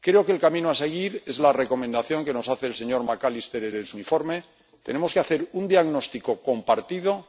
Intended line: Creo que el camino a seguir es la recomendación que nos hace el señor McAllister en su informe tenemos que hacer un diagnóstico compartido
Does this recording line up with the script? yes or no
no